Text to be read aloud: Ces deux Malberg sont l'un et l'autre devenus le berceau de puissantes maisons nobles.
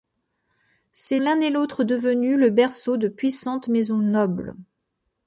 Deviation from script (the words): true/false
true